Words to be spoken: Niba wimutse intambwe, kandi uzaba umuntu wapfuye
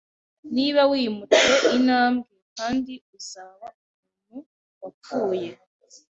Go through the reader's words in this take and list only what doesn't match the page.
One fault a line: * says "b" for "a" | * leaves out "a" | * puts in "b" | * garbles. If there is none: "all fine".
all fine